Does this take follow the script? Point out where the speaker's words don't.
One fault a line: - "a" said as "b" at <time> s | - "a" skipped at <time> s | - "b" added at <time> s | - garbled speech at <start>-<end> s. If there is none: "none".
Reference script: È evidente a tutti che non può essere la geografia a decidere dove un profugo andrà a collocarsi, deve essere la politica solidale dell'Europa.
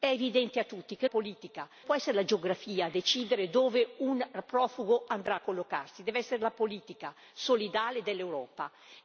- "non" said as "politica" at 1.0 s